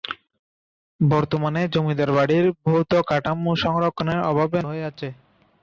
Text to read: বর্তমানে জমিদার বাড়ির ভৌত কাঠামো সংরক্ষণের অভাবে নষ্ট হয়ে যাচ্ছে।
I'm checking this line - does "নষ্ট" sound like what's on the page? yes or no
no